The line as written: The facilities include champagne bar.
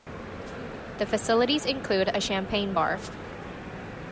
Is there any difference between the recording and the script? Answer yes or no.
yes